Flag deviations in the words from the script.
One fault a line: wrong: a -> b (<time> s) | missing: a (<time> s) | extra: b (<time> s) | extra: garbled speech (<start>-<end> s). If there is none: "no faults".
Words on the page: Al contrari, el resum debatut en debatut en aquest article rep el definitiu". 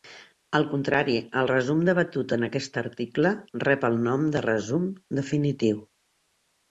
missing: debatut en (2.5 s)
extra: nom de resum (4.1 s)